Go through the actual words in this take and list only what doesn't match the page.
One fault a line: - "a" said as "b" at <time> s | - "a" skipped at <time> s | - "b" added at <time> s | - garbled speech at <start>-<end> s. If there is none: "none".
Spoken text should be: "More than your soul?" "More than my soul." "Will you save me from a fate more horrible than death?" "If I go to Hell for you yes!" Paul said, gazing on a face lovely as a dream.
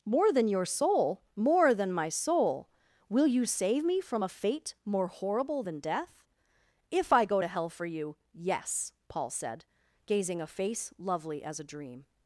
- "on" skipped at 10.4 s